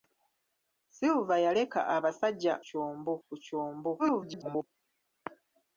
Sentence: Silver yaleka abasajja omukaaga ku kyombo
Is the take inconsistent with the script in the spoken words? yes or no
yes